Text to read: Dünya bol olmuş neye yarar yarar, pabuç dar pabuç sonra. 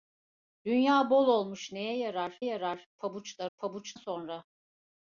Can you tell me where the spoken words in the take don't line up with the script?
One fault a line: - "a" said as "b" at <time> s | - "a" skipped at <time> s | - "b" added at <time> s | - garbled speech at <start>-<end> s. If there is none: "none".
none